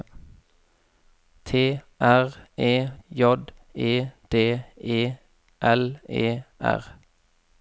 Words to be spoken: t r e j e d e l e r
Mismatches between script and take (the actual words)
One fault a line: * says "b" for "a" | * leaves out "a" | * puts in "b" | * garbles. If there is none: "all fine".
all fine